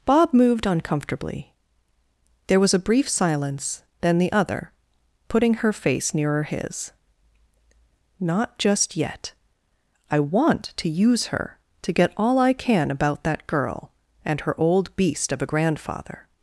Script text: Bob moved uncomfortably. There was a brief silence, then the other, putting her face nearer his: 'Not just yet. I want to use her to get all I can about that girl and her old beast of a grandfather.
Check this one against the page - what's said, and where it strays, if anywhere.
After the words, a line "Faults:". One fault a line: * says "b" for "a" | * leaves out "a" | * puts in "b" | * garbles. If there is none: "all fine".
Bob moved uncomfortably. There was a brief silence, then the other, putting her face nearer his: 'Not just yet. I want to use her to get all I can about that girl and her old beast of a grandfather.
Faults:
all fine